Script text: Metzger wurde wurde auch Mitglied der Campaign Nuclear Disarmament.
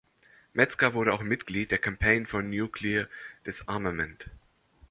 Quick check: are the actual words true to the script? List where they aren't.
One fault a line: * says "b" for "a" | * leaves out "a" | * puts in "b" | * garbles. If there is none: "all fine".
* leaves out "wurde"
* puts in "for"